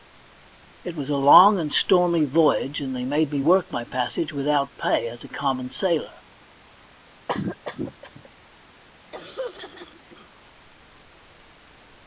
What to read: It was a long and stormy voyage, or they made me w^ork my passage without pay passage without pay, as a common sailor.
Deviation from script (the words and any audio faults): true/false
true